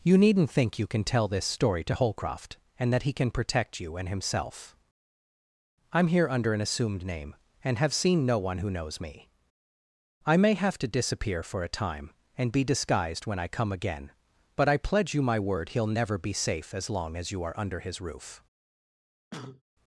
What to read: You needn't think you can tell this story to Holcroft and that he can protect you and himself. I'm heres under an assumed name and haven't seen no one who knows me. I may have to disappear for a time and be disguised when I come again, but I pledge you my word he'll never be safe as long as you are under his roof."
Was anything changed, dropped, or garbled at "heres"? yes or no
yes